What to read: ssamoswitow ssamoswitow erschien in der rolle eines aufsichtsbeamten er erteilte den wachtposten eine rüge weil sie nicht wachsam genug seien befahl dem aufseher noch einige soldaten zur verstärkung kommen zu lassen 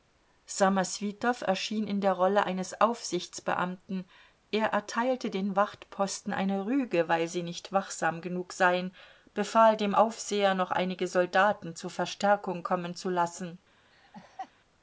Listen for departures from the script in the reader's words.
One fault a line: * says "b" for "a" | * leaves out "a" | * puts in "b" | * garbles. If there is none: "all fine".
* leaves out "ssamoswitow"